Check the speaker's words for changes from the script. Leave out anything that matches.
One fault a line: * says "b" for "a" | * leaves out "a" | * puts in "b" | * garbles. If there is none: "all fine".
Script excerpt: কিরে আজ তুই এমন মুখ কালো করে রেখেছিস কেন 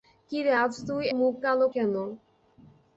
* leaves out "এমন"
* leaves out "করে রেখেছিস"